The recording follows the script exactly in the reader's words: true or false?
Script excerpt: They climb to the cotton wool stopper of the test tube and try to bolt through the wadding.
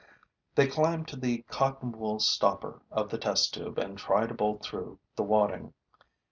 true